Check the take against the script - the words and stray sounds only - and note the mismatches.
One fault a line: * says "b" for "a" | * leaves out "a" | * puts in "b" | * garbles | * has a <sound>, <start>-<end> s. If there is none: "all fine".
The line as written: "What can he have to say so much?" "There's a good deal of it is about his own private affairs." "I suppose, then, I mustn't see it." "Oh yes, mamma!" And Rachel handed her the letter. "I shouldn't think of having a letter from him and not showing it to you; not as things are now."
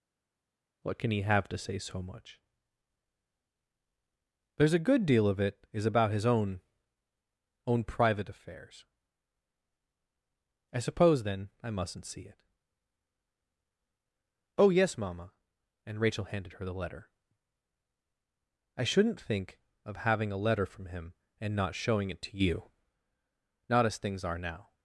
* puts in "own"